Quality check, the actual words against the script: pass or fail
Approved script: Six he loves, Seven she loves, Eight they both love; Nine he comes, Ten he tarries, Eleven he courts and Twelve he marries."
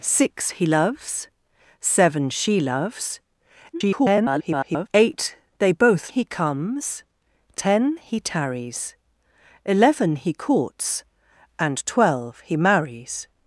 fail